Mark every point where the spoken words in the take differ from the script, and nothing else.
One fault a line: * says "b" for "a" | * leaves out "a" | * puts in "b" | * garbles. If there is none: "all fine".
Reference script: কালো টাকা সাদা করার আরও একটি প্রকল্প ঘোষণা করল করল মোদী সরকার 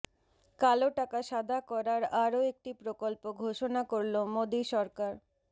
* leaves out "করল"